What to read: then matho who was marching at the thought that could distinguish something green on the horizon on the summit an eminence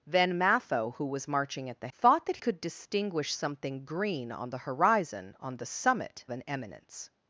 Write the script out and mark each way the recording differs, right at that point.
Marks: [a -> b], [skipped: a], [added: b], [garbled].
then matho who was marching at the thought that could distinguish something green on the horizon on the summit an eminence